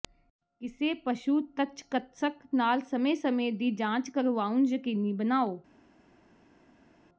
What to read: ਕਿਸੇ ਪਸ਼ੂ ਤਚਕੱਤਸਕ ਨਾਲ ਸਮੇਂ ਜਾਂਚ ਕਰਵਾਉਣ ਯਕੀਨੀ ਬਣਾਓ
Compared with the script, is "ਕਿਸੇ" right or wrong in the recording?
right